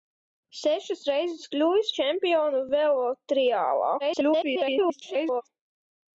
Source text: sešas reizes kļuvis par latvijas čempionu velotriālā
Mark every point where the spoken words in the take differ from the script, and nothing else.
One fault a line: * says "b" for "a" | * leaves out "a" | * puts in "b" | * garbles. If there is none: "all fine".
* leaves out "par latvijas"
* garbles